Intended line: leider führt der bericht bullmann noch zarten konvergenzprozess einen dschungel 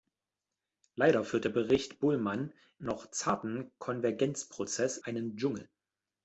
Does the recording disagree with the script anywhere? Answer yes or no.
no